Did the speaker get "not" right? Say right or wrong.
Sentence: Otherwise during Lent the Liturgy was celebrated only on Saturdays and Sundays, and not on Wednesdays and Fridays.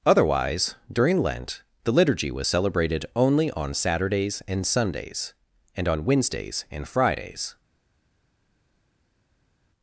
wrong